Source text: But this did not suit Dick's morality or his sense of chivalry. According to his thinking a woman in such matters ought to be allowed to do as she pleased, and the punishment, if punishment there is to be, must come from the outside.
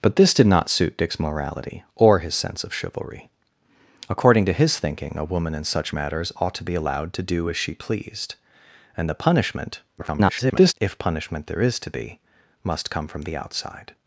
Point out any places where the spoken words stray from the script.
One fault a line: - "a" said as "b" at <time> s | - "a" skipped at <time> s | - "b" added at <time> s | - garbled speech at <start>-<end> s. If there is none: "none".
- garbled speech at 10.0-10.7 s